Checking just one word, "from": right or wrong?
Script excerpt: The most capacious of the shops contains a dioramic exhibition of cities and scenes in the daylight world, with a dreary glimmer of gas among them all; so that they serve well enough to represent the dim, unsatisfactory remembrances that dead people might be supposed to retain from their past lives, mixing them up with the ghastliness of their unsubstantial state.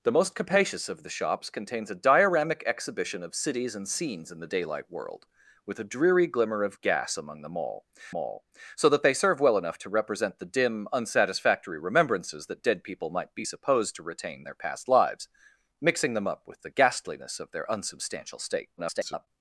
wrong